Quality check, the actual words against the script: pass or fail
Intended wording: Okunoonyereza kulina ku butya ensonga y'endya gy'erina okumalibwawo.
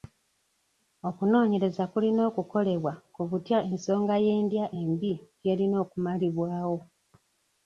fail